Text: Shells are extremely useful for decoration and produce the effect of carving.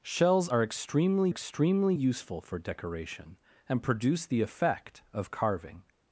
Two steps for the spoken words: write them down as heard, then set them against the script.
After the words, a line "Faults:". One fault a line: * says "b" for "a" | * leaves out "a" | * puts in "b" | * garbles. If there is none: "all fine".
Shells are extremely extremely useful for decoration and produce the effect of carving.
Faults:
* puts in "extremely"